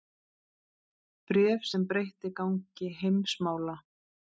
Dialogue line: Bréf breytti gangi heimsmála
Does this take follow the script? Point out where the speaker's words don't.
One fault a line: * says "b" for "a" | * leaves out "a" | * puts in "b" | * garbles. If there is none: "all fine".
* puts in "sem"